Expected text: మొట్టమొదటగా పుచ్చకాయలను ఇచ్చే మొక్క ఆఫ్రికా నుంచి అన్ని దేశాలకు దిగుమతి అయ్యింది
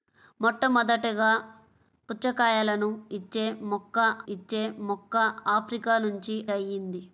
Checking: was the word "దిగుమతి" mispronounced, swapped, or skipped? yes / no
yes